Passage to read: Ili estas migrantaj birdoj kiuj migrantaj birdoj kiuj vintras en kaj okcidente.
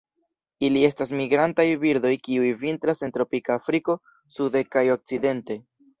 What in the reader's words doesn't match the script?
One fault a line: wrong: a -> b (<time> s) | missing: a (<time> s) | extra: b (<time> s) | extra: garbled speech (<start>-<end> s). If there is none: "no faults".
wrong: migrantaj birdoj kiuj vintras en -> vintras en tropika Afriko sude (2.6 s)